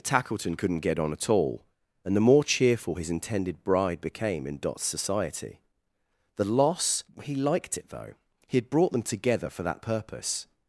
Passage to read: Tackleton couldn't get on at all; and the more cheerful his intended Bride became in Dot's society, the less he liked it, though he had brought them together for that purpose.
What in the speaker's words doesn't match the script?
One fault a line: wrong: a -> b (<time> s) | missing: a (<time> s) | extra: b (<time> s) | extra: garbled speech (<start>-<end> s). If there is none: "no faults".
wrong: less -> loss (6.4 s)